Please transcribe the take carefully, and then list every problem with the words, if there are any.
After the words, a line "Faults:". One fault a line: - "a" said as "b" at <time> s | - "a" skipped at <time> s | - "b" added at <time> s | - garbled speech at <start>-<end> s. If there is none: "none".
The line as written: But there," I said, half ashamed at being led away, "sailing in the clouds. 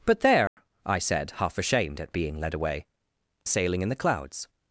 But there," I said, half ashamed at being led away, "sailing in the clouds.
Faults:
none